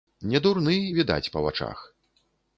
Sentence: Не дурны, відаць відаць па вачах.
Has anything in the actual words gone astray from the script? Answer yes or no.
yes